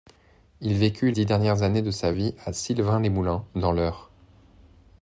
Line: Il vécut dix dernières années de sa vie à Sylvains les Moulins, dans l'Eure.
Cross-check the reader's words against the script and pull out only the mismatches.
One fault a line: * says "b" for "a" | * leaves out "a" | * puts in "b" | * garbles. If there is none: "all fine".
all fine